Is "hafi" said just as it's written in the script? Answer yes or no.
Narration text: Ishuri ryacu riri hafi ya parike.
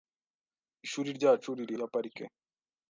no